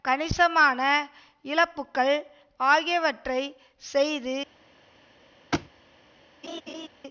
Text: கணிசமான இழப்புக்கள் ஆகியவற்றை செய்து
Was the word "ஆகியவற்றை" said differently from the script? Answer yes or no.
no